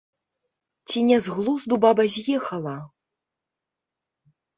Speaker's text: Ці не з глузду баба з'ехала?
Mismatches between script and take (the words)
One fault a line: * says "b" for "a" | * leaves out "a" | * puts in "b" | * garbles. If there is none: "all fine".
all fine